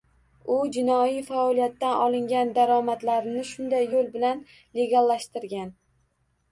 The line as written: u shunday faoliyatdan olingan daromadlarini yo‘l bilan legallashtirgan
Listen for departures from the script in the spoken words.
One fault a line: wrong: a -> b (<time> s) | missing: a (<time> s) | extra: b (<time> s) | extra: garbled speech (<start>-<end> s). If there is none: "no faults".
wrong: shunday -> jinoiy (0.7 s)
extra: shunday (3.5 s)